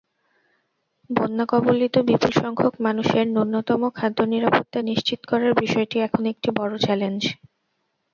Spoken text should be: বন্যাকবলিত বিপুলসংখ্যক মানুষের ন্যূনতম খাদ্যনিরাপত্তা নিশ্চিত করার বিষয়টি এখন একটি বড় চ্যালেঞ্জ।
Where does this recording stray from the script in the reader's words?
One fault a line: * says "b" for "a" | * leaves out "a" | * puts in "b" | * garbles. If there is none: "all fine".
all fine